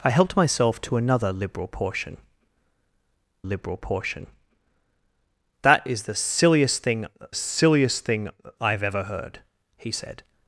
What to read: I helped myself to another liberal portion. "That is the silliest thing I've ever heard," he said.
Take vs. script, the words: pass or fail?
fail